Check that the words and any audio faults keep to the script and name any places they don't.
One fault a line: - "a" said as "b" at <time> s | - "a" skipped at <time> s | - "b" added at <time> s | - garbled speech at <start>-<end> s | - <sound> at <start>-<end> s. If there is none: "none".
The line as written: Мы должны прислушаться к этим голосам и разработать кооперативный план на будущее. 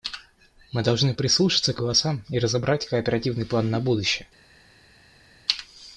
- "этим" skipped at 1.8 s